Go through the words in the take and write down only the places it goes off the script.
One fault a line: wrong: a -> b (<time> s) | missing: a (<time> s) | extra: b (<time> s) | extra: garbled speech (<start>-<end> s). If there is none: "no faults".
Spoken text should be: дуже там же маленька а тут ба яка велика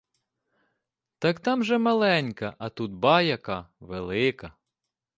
wrong: дуже -> так (1.2 s)